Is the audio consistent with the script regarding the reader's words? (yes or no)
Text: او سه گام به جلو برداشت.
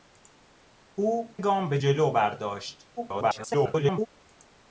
no